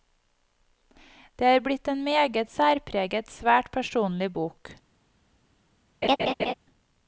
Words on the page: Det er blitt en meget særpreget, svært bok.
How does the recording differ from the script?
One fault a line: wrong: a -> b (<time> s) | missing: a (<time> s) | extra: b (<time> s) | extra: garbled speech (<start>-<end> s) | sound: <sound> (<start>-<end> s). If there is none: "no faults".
extra: personlig (3.8 s)
sound: laugh (6.0-6.5 s)